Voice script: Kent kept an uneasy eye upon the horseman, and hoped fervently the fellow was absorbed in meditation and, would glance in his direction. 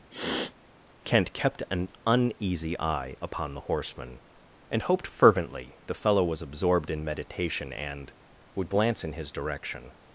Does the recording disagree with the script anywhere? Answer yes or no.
no